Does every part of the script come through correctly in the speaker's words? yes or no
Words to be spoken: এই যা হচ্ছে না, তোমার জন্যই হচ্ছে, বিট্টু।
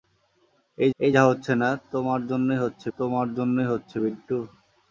no